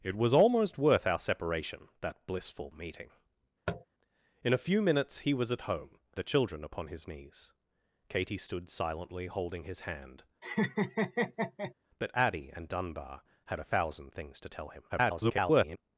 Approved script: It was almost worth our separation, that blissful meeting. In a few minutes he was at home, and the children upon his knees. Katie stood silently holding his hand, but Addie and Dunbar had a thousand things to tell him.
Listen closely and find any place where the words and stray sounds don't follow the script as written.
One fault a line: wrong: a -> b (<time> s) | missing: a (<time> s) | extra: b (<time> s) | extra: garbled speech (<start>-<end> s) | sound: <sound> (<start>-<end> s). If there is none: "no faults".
sound: tap (3.7-3.9 s)
missing: and (6.0 s)
sound: laugh (10.4-11.7 s)
extra: garbled speech (14.9-15.8 s)